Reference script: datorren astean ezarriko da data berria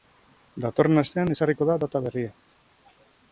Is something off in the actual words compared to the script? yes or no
no